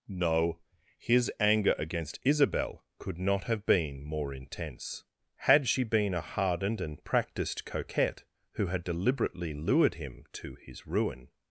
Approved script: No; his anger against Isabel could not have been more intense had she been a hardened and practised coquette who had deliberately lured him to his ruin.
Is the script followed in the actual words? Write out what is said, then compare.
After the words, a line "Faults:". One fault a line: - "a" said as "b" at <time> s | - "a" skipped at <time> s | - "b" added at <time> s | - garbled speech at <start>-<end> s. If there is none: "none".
No; his anger against Isabel could not have been more intense had she been a hardened and practised coquette who had deliberately lured him to his ruin.
Faults:
none